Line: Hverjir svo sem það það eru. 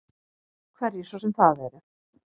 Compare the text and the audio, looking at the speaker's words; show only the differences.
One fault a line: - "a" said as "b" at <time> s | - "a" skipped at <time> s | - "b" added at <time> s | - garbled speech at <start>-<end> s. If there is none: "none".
- "það" skipped at 1.6 s